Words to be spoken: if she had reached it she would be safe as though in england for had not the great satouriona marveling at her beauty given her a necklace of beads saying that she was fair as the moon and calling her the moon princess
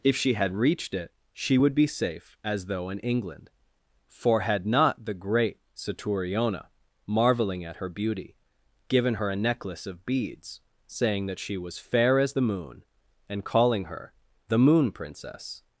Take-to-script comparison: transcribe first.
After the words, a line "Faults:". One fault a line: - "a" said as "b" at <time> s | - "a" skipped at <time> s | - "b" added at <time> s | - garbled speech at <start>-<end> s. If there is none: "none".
if she had reached it she would be safe as though in england for had not the great satouriona marveling at her beauty given her a necklace of beads saying that she was fair as the moon and calling her the moon princess
Faults:
none